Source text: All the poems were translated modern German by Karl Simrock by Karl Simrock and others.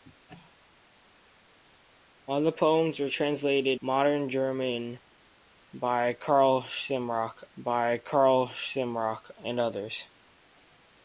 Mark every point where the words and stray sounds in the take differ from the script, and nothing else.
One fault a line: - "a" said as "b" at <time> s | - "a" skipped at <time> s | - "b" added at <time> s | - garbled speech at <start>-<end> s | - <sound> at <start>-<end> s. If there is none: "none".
none